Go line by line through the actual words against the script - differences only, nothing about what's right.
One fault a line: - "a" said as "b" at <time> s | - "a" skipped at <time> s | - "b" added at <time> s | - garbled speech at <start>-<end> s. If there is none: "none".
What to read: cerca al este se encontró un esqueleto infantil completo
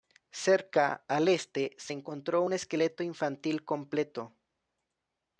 none